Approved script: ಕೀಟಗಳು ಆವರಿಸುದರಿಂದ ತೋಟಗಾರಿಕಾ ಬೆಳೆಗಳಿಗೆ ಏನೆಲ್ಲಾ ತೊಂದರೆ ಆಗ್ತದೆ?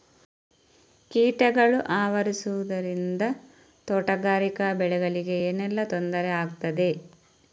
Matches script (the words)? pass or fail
pass